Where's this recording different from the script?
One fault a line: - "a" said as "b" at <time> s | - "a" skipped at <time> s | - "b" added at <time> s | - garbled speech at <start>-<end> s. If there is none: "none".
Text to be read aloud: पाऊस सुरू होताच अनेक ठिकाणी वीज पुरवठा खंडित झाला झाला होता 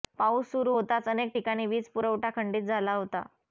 - "झाला" skipped at 2.9 s